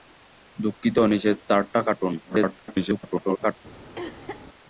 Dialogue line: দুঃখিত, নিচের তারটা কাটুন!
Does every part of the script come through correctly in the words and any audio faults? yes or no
no